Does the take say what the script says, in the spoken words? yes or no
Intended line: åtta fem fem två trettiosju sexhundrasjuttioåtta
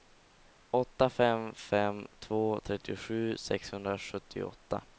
yes